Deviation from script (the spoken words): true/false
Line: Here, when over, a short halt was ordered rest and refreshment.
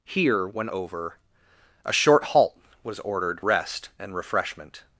false